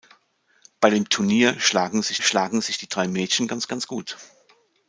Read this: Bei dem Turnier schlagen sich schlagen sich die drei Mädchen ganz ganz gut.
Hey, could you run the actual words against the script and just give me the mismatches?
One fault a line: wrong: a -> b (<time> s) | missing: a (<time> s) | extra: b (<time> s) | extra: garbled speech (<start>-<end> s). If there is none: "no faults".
no faults